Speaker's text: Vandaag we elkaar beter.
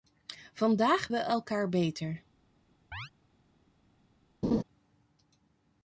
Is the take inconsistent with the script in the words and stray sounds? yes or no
yes